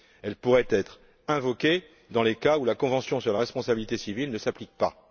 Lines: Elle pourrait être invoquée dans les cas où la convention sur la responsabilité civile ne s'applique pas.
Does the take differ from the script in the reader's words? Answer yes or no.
no